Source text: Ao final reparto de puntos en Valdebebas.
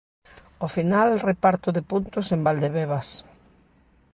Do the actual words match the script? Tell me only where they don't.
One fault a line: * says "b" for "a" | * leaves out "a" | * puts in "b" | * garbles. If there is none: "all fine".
all fine